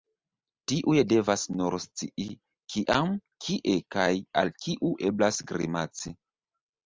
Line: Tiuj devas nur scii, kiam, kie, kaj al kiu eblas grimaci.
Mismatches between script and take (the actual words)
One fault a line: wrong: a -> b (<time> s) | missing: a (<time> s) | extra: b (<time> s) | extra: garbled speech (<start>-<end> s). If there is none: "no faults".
no faults